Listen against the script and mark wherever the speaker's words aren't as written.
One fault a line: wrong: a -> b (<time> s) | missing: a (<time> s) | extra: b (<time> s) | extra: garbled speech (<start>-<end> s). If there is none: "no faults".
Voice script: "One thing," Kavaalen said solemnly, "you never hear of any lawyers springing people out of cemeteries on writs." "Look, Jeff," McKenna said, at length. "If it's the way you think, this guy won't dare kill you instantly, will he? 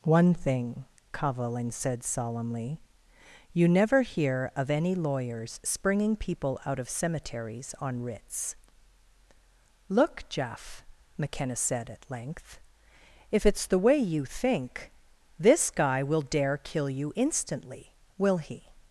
wrong: won't -> will (16.0 s)